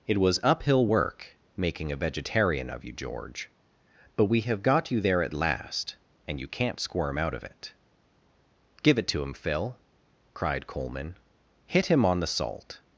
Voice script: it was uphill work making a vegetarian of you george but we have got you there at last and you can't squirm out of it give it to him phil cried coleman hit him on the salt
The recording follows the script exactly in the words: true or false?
true